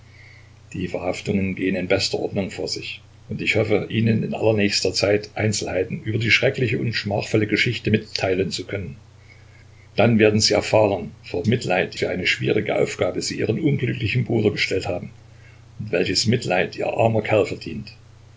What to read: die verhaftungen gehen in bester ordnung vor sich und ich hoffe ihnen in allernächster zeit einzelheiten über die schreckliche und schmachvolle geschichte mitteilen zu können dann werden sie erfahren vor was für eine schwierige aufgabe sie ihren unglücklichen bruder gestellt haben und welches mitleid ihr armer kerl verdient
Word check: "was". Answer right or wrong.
wrong